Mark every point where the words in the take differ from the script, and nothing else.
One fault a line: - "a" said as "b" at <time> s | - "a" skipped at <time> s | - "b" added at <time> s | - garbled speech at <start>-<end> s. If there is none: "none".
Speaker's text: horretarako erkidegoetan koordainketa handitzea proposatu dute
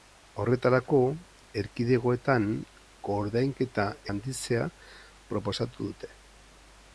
none